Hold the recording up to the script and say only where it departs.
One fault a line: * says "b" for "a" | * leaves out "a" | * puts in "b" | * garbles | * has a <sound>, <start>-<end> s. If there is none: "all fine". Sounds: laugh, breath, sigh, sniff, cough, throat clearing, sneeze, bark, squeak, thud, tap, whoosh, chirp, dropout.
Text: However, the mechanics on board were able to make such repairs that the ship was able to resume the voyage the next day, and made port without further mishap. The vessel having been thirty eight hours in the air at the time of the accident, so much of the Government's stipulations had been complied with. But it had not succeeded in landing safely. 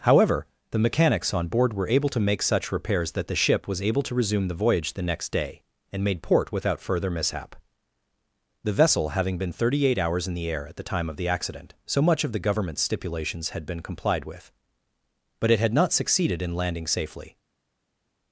all fine